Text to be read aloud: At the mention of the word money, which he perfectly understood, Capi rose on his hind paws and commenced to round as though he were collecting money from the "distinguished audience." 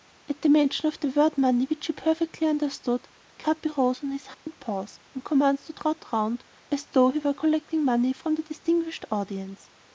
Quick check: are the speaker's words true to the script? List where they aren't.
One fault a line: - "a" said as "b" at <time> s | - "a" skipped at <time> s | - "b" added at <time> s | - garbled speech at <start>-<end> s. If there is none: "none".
- "trot" added at 5.7 s